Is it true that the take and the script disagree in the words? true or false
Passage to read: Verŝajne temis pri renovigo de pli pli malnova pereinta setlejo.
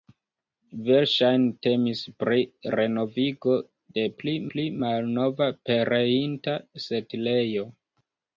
false